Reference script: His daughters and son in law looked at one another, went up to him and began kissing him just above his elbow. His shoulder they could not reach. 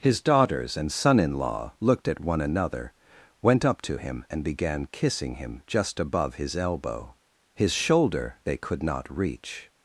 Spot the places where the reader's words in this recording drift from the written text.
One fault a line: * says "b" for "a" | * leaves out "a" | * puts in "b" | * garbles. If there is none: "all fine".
all fine